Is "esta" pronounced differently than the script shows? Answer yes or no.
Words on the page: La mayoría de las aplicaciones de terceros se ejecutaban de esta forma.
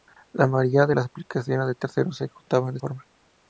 yes